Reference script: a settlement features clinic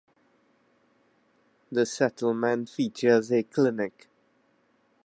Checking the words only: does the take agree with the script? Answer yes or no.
no